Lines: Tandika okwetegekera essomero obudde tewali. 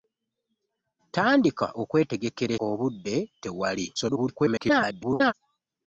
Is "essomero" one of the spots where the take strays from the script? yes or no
yes